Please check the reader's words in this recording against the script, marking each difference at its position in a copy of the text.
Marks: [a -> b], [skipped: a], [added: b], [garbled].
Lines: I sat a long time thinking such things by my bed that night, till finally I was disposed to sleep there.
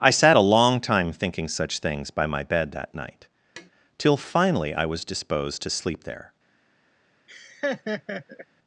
I sat a long time thinking such things by my bed that night, till finally I was disposed to sleep there.